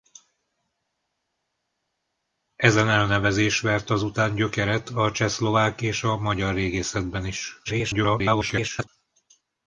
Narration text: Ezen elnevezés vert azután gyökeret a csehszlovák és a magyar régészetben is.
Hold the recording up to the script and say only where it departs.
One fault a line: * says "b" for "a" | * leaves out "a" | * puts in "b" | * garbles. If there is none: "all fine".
* garbles